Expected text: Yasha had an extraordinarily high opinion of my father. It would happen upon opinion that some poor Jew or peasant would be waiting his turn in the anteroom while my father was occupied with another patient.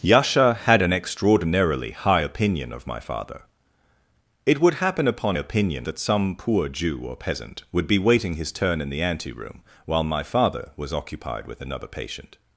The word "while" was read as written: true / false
true